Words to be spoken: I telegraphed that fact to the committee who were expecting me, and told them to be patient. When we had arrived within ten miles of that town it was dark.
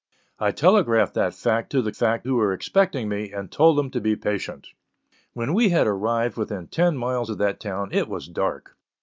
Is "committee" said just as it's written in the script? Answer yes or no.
no